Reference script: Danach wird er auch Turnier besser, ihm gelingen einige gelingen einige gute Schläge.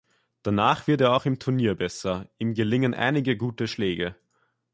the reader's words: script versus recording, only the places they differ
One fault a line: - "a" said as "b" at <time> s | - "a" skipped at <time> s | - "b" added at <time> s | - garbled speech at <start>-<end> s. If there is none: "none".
- "im" added at 1.3 s
- "gelingen einige" skipped at 3.3 s